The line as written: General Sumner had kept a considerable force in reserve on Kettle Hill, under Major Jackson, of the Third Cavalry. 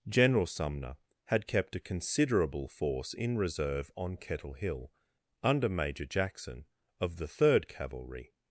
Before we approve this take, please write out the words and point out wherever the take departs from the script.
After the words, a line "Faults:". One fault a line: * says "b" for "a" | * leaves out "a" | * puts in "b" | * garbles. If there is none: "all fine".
General Sumner had kept a considerable force in reserve on Kettle Hill, under Major Jackson, of the Third Cavalry.
Faults:
all fine